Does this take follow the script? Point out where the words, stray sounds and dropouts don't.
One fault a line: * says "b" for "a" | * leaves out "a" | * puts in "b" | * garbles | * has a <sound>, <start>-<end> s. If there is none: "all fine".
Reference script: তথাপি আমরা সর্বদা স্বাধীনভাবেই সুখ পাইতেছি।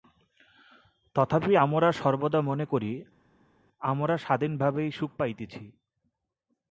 * puts in "মনে করি আমরা"